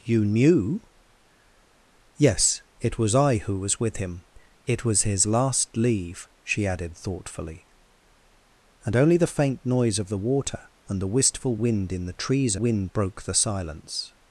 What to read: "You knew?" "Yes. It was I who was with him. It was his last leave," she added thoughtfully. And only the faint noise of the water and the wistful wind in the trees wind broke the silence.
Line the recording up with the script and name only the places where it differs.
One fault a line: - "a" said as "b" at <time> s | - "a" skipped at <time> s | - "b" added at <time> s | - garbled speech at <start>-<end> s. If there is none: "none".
none